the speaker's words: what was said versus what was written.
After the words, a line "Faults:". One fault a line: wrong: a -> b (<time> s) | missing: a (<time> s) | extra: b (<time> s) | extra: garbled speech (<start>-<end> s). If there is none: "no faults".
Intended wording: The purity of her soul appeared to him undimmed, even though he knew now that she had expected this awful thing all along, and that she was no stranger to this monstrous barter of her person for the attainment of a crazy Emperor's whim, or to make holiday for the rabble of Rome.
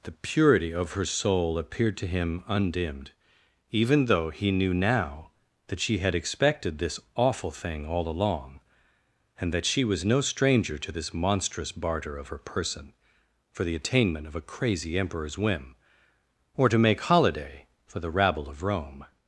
The purity of her soul appeared to him undimmed, even though he knew now that she had expected this awful thing all along, and that she was no stranger to this monstrous barter of her person for the attainment of a crazy Emperor's whim, or to make holiday for the rabble of Rome.
Faults:
no faults